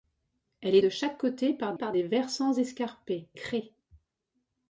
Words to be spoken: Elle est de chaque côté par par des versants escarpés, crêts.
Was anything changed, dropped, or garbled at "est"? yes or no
no